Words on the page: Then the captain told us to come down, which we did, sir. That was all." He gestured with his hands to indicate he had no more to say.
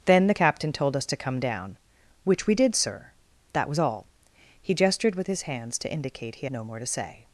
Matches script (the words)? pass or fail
fail